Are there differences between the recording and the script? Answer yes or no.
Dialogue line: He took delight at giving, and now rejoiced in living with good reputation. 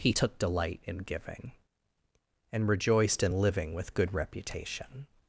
yes